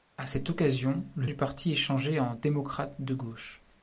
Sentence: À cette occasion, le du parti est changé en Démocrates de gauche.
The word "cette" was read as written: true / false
true